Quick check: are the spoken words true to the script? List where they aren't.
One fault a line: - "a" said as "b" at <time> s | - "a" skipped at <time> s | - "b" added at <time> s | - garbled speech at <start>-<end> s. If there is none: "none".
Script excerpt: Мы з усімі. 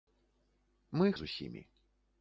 none